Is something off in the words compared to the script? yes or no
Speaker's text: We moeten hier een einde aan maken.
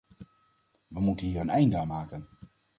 no